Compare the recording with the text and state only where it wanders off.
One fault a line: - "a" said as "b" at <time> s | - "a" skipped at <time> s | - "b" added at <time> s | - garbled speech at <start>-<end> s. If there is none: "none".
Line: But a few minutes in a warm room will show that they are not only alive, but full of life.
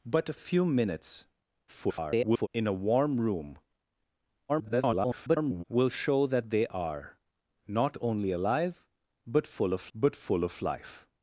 - garbled speech at 1.7-2.5 s
- garbled speech at 4.5-5.6 s
- "but full of" added at 10.0 s